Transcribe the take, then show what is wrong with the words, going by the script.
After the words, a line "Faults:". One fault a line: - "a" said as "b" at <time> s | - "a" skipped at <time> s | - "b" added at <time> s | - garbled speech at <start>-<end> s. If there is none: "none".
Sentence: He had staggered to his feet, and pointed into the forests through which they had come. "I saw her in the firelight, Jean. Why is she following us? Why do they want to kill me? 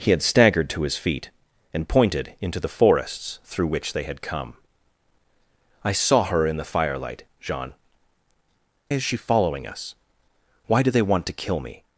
He had staggered to his feet, and pointed into the forests through which they had come. "I saw her in the firelight, Jean. Is she following us? Why do they want to kill me?
Faults:
- "Why" skipped at 7.8 s